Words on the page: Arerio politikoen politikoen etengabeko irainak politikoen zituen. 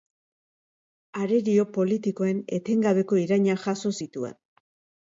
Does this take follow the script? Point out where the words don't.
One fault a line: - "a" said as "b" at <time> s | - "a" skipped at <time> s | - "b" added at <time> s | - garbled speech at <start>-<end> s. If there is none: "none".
- "politikoen" skipped at 2.4 s
- "politikoen" said as "jaso" at 3.7 s